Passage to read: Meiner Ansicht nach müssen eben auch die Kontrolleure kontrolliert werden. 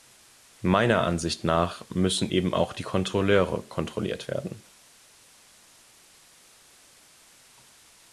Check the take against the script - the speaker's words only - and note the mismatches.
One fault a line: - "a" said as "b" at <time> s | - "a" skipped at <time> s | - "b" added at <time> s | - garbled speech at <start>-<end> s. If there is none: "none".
none